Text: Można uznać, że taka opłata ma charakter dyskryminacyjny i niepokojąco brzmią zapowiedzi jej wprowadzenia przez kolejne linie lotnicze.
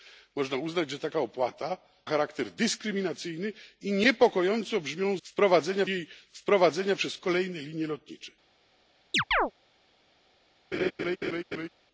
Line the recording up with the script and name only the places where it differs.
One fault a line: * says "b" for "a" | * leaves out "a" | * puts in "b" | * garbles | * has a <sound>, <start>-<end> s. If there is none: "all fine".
* leaves out "ma"
* says "wprowadzenia" for "zapowiedzi"
* has a chirp, 9.1-9.5 s
* has a laugh, 10.7-11.7 s